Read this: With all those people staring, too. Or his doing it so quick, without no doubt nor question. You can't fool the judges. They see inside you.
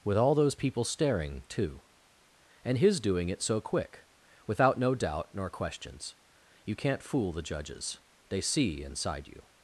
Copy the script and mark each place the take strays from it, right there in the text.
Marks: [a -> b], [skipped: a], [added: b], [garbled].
With all those people staring, too. [Or -> And] his doing it so quick, without no doubt nor [question. -> questions] You can't fool the judges. They see inside you.